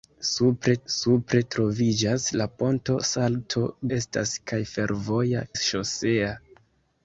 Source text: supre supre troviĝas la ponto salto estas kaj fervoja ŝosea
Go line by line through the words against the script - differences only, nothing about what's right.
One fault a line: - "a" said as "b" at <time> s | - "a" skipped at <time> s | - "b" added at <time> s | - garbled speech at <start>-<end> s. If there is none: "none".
none